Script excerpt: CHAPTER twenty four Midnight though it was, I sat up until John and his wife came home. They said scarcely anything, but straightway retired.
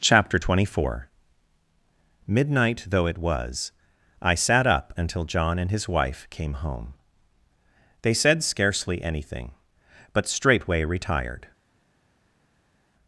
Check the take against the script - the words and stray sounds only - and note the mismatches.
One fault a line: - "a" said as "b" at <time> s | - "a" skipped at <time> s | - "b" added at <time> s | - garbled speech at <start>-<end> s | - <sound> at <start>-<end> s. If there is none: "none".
none